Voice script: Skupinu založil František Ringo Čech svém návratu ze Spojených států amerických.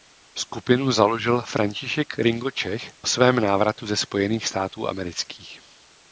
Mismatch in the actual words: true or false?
false